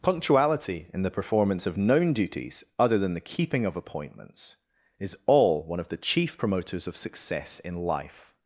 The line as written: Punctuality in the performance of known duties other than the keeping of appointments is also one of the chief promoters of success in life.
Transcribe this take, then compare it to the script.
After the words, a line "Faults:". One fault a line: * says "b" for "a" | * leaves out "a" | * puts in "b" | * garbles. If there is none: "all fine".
Punctuality in the performance of known duties other than the keeping of appointments is all one of the chief promoters of success in life.
Faults:
* says "all" for "also"